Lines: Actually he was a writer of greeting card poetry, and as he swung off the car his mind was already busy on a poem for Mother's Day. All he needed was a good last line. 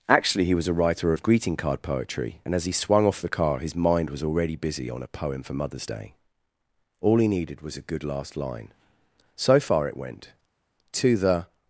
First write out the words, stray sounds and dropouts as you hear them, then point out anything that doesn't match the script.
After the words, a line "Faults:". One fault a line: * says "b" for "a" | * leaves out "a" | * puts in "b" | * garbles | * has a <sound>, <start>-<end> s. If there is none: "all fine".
Actually he was a writer of greeting card poetry, and as he swung off the car his mind was already busy on a poem for Mother's Day. All he needed was a good last line. So far it went: "To the
Faults:
* puts in "So far it went To the"